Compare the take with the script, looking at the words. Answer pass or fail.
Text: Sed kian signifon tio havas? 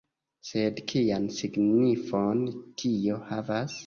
pass